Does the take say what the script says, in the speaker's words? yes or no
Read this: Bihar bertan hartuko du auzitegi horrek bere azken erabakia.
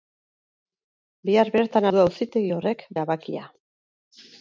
no